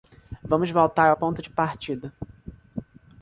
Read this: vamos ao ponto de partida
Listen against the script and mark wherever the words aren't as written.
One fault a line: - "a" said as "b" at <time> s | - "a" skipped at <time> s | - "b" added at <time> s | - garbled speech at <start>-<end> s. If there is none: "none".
- "voltar" added at 0.7 s